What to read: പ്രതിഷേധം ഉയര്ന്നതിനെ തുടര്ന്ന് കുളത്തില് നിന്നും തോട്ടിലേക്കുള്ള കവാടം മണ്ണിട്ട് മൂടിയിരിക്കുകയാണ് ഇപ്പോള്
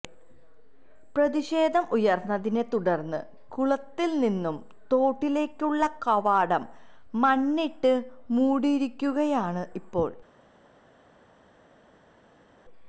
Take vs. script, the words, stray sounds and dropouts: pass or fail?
pass